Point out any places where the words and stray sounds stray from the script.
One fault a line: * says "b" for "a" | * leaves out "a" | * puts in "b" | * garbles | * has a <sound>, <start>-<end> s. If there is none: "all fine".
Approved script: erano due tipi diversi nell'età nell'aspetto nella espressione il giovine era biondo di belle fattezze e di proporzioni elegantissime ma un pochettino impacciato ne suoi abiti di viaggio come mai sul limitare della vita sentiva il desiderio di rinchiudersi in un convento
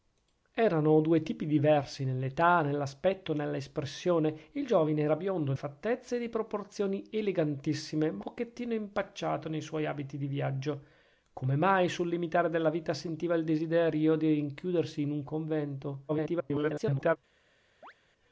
* leaves out "di belle"
* leaves out "un"
* garbles
* has a chirp, 17.8-17.9 s